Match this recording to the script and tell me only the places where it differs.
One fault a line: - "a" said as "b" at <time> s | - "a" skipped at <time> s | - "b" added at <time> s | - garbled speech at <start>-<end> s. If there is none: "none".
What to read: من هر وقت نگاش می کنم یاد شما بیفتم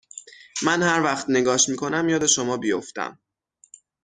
none